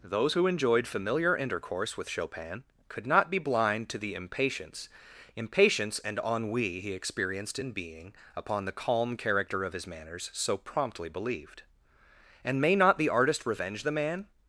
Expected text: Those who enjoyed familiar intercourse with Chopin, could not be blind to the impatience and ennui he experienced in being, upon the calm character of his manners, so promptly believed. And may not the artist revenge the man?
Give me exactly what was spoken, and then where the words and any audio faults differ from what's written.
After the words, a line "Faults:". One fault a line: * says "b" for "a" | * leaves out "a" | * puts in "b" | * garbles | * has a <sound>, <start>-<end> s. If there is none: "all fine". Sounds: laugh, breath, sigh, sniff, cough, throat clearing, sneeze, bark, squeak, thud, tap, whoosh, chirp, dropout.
Those who enjoyed familiar intercourse with Chopin, could not be blind to the impatience impatience and ennui he experienced in being, upon the calm character of his manners, so promptly believed. And may not the artist revenge the man?
Faults:
* puts in "impatience"